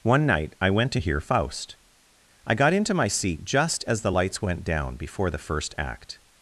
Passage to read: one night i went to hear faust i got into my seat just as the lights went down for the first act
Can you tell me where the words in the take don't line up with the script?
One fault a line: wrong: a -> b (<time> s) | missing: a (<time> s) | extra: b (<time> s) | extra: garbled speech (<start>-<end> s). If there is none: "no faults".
wrong: for -> before (5.0 s)